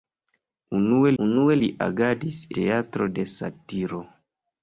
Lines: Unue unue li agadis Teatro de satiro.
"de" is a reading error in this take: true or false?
false